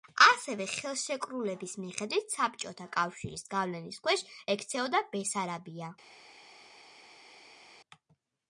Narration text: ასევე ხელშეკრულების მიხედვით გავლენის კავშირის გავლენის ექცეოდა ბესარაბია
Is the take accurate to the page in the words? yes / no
no